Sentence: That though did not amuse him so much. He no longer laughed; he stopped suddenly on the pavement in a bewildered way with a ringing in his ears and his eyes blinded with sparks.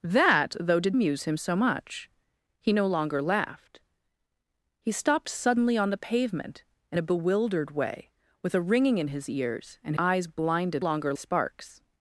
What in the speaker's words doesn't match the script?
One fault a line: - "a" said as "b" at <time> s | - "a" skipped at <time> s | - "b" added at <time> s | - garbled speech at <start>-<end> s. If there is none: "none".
- "not" skipped at 1.0 s
- "his" skipped at 9.9 s
- "with" said as "longer" at 10.8 s